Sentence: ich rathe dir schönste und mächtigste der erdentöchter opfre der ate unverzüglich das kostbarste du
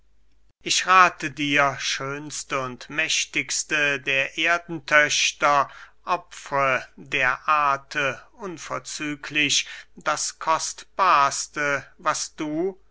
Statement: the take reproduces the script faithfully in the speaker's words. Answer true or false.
false